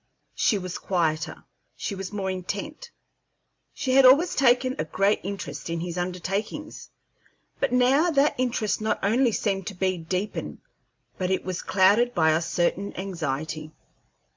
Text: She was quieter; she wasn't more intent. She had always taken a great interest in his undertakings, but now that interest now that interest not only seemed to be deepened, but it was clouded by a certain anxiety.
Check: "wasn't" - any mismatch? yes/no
yes